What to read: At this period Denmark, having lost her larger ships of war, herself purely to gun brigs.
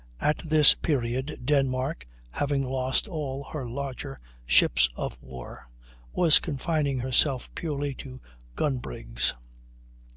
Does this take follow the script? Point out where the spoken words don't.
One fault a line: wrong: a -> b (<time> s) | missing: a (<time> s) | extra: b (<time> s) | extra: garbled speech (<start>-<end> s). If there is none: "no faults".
extra: all (3.1 s)
extra: was confining (6.1 s)